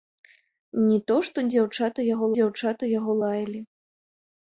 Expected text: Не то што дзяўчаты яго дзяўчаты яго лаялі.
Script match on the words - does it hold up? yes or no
yes